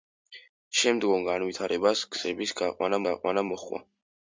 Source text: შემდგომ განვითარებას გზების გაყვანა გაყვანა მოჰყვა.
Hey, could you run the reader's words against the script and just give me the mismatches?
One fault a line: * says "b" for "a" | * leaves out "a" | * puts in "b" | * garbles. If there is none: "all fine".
all fine